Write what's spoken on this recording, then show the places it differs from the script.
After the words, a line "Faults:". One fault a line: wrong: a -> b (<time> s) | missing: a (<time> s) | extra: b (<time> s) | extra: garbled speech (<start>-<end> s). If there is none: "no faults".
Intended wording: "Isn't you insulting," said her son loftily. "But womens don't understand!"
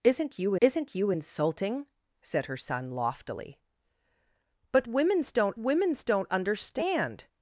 "Isn't you isn't you insulting," said her son loftily. "But womens don't womens don't understand!"
Faults:
extra: isn't you (0.6 s)
extra: womens don't (5.6 s)